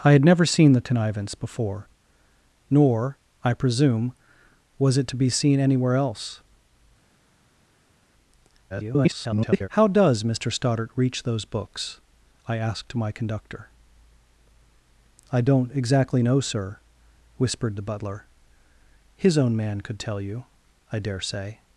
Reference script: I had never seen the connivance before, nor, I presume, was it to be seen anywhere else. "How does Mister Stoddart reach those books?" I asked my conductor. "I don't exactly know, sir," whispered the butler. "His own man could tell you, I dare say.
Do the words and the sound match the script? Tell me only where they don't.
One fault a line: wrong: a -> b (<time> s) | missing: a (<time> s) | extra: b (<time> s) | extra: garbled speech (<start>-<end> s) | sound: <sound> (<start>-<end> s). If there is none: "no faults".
extra: garbled speech (8.7-9.7 s)